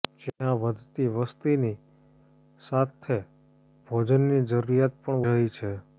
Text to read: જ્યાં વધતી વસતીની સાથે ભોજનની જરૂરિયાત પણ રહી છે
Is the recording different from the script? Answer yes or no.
no